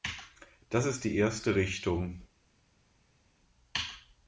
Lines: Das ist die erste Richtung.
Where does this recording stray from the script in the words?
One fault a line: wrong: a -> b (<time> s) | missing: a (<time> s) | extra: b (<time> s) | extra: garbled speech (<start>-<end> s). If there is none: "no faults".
no faults